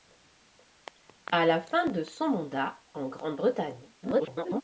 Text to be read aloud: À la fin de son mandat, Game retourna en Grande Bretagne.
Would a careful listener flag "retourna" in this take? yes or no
yes